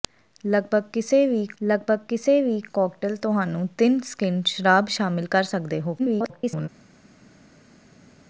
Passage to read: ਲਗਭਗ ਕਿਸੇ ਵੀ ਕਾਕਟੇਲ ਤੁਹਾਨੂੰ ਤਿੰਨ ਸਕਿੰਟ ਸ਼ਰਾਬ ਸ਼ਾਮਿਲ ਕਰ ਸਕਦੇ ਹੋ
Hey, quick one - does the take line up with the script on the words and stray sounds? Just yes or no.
no